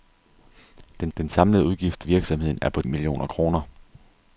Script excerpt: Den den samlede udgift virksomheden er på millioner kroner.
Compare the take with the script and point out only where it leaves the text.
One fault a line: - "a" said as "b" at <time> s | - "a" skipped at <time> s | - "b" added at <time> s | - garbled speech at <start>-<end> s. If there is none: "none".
none